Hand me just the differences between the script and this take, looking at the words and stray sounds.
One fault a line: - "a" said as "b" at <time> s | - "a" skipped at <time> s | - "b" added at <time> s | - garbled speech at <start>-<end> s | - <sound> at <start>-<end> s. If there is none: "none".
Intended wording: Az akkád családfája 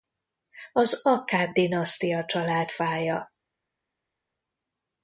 - "dinasztia" added at 1.5 s